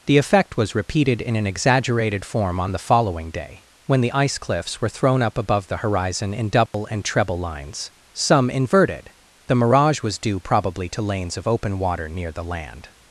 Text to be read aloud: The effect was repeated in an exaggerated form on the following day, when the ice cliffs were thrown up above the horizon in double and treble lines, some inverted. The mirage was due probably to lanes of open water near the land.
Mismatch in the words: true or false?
false